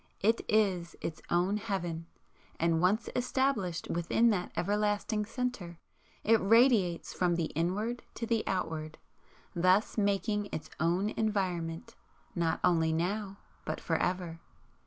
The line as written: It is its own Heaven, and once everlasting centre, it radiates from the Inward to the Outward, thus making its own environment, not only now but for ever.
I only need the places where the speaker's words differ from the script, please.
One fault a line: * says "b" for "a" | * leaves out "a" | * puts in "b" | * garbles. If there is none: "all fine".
* puts in "established within that"